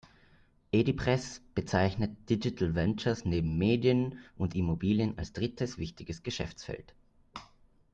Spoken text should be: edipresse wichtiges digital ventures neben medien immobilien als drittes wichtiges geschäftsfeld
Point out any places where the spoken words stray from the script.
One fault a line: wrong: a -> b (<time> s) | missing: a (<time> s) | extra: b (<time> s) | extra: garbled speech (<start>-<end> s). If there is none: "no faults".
wrong: wichtiges -> bezeichnet (1.5 s)
extra: und (4.3 s)